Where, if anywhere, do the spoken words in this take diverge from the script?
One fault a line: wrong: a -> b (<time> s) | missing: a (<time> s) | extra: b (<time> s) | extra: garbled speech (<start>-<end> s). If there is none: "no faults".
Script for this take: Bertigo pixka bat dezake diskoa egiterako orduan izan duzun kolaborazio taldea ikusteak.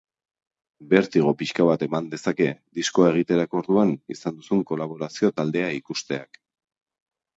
extra: eman (1.9 s)